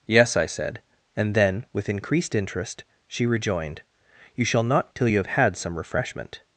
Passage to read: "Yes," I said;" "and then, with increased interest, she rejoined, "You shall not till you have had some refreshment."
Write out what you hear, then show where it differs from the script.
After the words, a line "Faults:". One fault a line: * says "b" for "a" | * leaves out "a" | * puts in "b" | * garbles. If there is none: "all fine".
"Yes," I said;" "and then, with increased interest, she rejoined, "You shall not till you have had some refreshment."
Faults:
all fine